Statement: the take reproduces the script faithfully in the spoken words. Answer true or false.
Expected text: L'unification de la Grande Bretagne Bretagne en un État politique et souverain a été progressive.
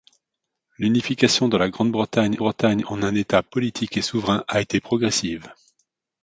true